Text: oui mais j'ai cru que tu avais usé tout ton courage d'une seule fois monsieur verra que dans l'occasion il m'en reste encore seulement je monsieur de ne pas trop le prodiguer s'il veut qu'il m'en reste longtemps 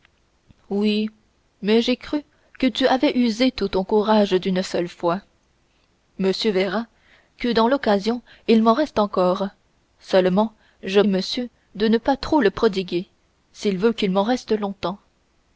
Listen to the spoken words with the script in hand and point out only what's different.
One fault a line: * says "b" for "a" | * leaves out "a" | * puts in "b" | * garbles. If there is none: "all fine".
all fine